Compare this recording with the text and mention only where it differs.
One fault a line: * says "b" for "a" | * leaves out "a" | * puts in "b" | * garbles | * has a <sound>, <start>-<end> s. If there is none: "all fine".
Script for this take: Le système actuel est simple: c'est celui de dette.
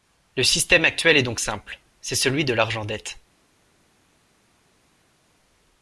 * puts in "donc"
* puts in "l'argent"